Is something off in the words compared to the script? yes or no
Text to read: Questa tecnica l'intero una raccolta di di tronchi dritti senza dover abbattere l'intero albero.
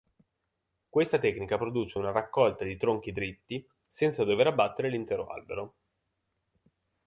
yes